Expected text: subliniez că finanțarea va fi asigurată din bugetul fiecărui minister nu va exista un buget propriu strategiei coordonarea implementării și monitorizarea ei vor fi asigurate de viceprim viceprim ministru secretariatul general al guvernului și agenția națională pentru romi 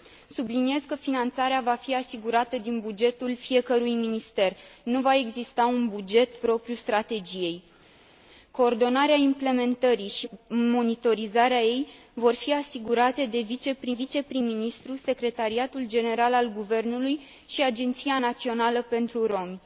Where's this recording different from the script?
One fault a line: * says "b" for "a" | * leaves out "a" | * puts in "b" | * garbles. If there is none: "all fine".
all fine